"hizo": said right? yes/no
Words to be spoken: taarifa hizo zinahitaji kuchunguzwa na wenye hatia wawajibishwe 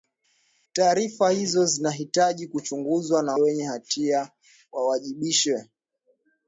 yes